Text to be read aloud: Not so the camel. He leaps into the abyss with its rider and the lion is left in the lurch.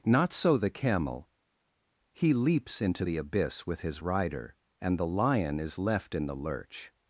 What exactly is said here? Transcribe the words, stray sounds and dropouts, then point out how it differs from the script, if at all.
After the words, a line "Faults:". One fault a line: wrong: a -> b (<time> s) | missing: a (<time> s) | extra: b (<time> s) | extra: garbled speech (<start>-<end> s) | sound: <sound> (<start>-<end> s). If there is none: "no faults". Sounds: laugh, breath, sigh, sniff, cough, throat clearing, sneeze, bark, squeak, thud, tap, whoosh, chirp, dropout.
Not so the camel. He leaps into the abyss with his rider and the lion is left in the lurch.
Faults:
wrong: its -> his (3.8 s)